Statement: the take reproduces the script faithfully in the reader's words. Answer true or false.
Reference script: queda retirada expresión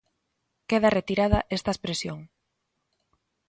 false